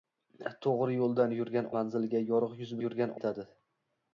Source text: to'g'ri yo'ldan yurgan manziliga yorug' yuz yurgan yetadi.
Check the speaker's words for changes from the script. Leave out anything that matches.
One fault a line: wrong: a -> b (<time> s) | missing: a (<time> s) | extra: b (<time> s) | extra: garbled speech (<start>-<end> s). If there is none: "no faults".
no faults